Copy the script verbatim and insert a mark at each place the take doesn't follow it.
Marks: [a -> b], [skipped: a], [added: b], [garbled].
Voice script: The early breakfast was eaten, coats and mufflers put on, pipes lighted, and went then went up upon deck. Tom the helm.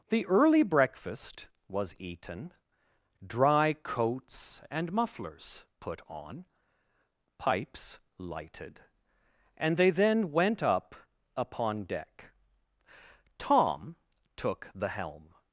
The early breakfast was eaten, [added: dry] coats and mufflers put on, pipes lighted, and [went -> they] then went up upon deck. Tom [added: took] the helm.